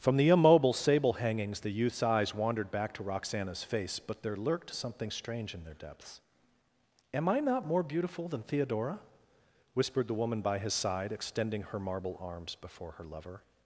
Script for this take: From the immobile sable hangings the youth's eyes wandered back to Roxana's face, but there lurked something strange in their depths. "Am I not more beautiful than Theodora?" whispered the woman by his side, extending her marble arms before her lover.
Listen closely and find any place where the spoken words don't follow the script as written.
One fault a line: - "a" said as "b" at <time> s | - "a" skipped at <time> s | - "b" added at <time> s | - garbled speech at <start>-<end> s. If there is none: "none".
none